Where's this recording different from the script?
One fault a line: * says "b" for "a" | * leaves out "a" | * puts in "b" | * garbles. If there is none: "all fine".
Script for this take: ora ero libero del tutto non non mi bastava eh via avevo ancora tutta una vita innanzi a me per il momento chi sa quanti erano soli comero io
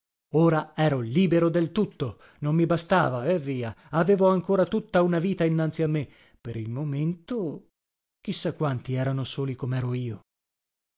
* leaves out "non"